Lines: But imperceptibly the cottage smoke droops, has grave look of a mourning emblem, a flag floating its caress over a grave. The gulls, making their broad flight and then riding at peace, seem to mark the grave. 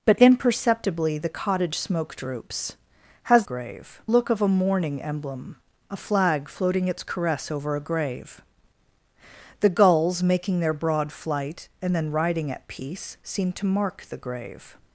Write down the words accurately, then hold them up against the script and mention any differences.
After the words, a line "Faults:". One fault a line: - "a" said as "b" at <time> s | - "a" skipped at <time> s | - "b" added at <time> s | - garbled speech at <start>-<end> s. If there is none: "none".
But imperceptibly the cottage smoke droops, has grave look of a mourning emblem, a flag floating its caress over a grave. The gulls, making their broad flight and then riding at peace, seem to mark the grave.
Faults:
none